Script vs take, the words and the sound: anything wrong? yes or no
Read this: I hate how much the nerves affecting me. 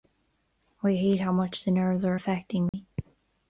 yes